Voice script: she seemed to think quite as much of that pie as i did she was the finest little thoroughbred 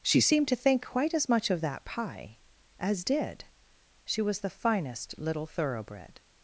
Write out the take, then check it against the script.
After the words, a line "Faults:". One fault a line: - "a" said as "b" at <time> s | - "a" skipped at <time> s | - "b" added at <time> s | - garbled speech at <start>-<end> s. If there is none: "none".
she seemed to think quite as much of that pie as did she was the finest little thoroughbred
Faults:
- "i" skipped at 3.0 s